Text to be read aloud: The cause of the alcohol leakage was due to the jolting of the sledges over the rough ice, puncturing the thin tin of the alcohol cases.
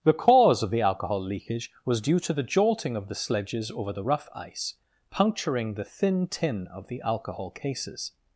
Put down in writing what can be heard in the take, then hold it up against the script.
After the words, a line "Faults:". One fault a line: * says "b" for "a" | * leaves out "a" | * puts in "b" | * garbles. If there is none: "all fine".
The cause of the alcohol leakage was due to the jolting of the sledges over the rough ice, puncturing the thin tin of the alcohol cases.
Faults:
all fine